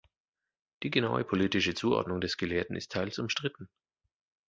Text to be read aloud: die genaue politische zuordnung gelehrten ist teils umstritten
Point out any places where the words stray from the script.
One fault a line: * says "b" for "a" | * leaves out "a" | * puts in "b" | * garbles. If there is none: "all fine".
* puts in "des"